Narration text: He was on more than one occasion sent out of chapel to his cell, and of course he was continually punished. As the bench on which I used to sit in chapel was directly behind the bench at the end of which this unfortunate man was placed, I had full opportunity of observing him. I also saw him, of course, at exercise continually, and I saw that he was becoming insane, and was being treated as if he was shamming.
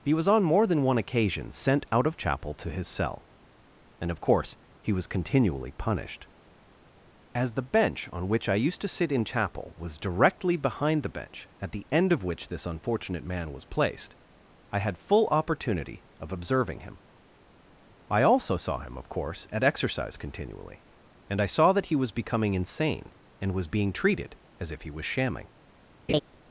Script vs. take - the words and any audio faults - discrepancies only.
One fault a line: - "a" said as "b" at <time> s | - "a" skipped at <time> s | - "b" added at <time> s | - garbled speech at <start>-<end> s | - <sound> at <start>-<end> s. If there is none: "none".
- laugh at 26.1-26.2 s